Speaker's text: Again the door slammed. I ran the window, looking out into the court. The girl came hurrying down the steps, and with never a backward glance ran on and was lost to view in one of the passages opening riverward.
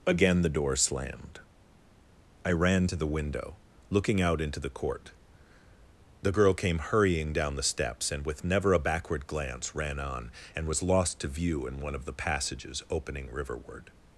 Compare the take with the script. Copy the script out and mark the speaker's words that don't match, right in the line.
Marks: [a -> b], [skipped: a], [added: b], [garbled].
Again the door slammed. I ran [added: to] the window, looking out into the court. The girl came hurrying down the steps, and with never a backward glance ran on and was lost to view in one of the passages opening riverward.